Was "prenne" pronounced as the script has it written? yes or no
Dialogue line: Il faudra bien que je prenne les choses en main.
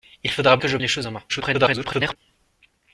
no